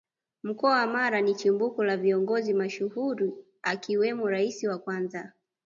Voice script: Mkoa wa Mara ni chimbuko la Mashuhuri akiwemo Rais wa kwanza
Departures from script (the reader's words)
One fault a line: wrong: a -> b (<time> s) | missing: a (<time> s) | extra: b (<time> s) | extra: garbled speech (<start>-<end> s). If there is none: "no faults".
extra: Viongozi (2.0 s)